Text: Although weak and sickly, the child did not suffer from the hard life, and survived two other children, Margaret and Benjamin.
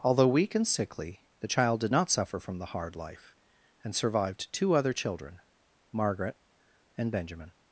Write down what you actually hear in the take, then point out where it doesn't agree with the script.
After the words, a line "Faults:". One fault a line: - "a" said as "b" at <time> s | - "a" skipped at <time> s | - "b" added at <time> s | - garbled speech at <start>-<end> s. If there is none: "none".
Although weak and sickly, the child did not suffer from the hard life, and survived two other children, Margaret and Benjamin.
Faults:
none